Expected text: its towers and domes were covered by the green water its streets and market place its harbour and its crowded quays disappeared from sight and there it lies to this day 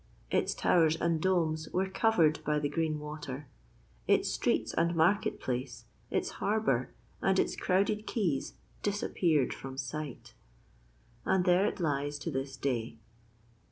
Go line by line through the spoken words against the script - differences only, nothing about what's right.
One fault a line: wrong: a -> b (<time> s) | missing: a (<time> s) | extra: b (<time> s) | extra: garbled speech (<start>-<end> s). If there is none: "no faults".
no faults